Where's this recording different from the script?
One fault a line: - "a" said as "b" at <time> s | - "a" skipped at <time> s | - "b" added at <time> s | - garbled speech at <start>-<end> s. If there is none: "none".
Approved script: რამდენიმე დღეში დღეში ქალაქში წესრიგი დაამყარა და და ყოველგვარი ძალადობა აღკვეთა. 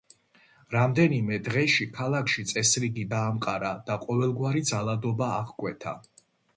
- "დღეში" skipped at 1.9 s
- "და" skipped at 4.0 s